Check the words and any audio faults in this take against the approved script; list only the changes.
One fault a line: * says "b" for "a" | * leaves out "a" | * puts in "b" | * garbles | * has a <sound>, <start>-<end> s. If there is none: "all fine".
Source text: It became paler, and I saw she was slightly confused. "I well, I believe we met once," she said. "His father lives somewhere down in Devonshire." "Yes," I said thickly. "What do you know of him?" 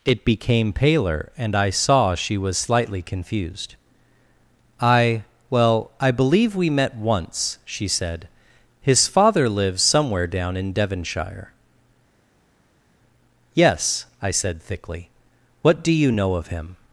all fine